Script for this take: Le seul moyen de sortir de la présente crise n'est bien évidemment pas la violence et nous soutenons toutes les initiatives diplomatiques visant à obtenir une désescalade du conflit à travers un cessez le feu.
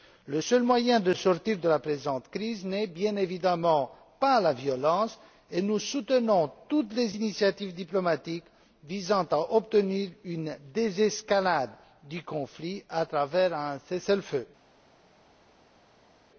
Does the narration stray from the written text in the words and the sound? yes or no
no